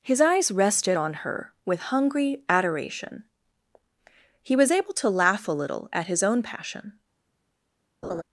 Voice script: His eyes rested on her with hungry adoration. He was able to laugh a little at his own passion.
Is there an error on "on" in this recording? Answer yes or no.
no